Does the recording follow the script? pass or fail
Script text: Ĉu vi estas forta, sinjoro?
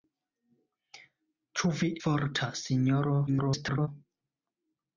fail